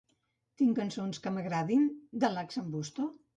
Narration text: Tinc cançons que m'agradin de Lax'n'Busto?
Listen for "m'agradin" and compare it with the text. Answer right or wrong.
right